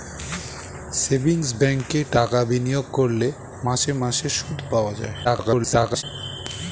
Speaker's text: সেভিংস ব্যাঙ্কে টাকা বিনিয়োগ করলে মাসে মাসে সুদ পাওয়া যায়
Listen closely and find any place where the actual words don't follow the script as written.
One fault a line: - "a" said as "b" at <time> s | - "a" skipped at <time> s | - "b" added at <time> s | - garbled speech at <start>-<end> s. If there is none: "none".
- garbled speech at 5.2-6.0 s